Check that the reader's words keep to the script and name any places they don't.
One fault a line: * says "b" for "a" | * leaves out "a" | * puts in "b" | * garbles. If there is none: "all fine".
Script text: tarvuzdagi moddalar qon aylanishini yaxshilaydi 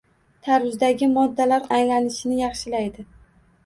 * leaves out "qon"